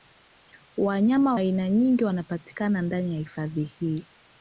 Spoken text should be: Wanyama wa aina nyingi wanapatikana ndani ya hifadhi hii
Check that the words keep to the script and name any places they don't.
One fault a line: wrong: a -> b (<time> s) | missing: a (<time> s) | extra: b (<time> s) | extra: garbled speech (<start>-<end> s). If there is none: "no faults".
missing: wa (1.4 s)